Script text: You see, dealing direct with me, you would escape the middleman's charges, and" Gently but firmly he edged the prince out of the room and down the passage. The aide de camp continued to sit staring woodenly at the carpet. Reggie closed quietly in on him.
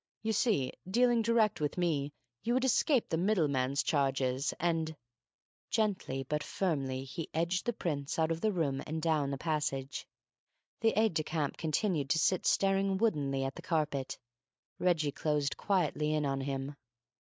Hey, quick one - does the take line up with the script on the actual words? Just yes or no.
yes